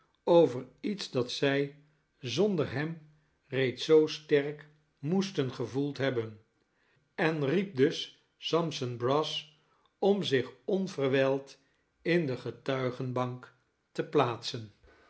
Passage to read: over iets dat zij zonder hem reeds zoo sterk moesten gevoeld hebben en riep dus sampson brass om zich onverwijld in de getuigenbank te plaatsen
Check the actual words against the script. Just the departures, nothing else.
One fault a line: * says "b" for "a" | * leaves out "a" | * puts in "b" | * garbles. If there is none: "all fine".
all fine